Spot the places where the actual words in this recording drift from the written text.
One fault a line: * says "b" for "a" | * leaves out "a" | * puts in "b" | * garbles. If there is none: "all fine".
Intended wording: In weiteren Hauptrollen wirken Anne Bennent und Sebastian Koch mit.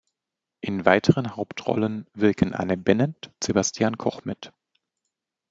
* leaves out "und"